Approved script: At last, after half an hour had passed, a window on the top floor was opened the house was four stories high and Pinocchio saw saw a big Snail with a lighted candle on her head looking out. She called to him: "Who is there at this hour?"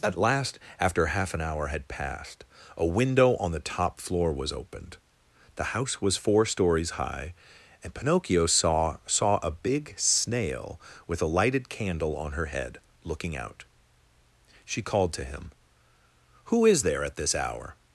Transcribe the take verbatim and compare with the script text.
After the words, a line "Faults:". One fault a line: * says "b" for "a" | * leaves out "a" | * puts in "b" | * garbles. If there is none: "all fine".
At last, after half an hour had passed, a window on the top floor was opened the house was four stories high and Pinocchio saw saw a big Snail with a lighted candle on her head looking out. She called to him: "Who is there at this hour?"
Faults:
all fine